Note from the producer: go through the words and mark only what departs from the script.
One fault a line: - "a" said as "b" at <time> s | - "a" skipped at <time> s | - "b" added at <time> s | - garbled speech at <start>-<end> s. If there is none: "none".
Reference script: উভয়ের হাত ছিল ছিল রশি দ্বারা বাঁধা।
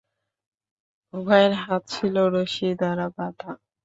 - "ছিল" skipped at 2.1 s